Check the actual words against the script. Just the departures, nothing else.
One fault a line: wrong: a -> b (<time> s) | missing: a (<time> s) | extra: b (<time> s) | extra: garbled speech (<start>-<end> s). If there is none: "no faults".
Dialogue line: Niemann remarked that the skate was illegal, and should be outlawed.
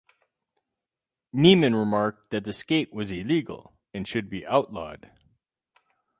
no faults